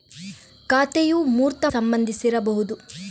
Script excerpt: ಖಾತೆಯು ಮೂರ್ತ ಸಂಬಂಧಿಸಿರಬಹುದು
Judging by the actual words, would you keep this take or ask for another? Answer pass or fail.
pass